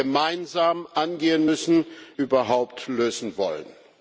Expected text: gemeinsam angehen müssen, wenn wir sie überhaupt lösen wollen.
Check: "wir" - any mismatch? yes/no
yes